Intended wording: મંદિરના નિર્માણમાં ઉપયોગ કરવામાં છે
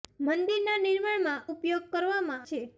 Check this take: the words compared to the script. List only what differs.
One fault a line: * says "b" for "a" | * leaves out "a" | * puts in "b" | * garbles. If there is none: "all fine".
all fine